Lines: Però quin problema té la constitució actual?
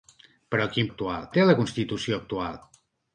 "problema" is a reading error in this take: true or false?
true